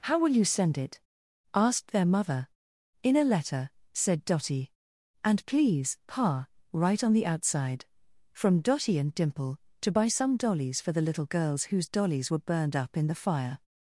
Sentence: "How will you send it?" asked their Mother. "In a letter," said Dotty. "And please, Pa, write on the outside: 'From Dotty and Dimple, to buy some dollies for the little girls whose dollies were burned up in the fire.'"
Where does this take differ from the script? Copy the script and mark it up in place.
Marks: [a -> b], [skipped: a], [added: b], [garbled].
"How will you send it?" asked their Mother. "In a letter," said Dotty. "And please, Pa, write on the outside: 'From Dotty and Dimple, to buy some dollies for the little girls whose dollies were burned up in the fire.'"